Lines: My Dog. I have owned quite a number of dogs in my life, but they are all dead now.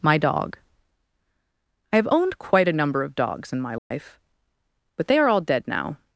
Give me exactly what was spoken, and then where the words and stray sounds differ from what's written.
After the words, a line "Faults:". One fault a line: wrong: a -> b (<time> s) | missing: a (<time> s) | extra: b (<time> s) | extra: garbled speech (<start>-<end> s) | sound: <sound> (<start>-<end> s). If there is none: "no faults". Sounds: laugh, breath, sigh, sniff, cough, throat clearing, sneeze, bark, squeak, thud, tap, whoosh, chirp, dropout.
My Dog. I have owned quite a number of dogs in my life, but they are all dead now.
Faults:
sound: dropout (3.8-3.9 s)